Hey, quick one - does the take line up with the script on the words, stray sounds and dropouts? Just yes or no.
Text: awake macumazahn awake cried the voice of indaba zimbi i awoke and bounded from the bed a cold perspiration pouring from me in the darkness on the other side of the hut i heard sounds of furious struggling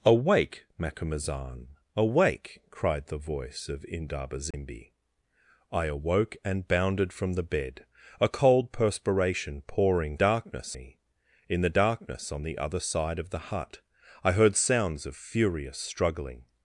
no